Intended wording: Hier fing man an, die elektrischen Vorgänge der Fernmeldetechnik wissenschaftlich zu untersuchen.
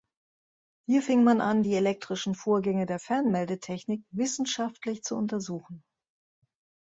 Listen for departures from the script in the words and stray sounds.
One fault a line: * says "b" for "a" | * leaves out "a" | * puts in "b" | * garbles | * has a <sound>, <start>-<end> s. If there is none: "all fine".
all fine